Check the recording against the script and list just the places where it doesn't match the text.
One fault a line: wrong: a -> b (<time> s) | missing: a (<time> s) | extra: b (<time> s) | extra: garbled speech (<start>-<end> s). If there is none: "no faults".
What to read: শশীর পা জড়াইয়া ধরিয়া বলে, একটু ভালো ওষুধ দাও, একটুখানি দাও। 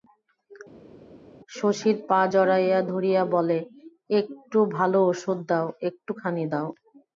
no faults